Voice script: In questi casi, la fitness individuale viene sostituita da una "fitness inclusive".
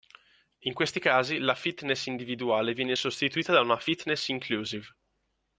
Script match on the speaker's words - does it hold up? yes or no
yes